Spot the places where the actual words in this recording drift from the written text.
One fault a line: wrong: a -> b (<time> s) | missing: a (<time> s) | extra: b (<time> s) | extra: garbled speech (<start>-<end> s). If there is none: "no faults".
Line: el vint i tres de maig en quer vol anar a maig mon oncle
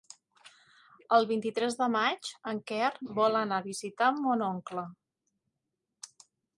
wrong: maig -> visitar (3.7 s)